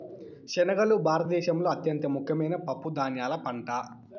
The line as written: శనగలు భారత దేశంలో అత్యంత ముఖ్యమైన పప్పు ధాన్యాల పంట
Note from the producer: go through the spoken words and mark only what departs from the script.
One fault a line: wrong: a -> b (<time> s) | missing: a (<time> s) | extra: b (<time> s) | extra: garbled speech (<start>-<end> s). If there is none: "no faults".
no faults